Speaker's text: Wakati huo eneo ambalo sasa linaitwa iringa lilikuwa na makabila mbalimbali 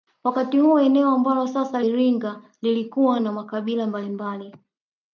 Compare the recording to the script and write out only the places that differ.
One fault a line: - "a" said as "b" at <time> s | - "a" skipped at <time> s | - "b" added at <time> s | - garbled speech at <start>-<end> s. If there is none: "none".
- "linaitwa" skipped at 1.8 s